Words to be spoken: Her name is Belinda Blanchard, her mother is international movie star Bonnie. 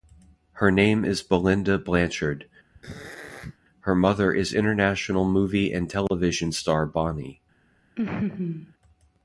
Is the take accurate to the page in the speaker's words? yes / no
no